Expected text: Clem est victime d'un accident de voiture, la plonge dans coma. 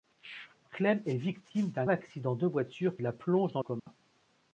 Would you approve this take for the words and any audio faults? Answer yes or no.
no